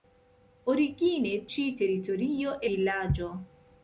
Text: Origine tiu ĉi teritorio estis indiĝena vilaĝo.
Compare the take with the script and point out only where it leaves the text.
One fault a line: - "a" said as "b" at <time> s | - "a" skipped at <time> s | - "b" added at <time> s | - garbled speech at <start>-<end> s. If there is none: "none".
- "tiu" skipped at 1.3 s
- "estis indiĝena" skipped at 2.6 s